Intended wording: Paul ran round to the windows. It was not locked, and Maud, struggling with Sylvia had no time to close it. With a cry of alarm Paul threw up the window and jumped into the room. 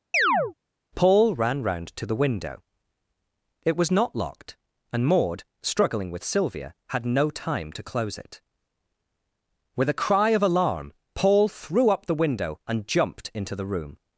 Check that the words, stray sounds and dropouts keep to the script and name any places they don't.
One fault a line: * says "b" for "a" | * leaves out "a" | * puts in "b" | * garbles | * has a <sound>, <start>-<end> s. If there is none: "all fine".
* has a chirp, 0.1-0.5 s
* says "window" for "windows"